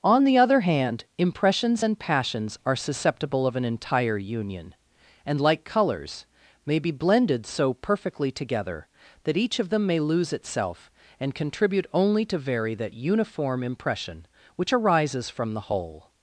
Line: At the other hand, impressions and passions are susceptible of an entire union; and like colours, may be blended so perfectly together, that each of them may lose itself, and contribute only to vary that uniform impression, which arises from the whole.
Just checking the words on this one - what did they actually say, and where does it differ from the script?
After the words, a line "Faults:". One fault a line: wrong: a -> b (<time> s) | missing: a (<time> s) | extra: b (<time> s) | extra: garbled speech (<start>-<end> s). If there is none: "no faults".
On the other hand, impressions and passions are susceptible of an entire union; and like colours, may be blended so perfectly together, that each of them may lose itself, and contribute only to vary that uniform impression, which arises from the whole.
Faults:
wrong: At -> On (0.0 s)